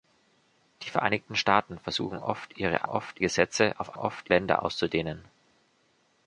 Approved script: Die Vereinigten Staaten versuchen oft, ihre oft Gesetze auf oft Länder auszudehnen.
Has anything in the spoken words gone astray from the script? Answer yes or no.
no